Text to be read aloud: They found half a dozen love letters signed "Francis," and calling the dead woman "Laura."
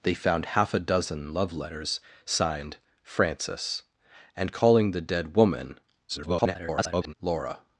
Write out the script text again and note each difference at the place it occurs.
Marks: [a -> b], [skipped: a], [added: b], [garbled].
They found half a dozen love letters signed "Francis," and calling the dead woman [garbled] "Laura."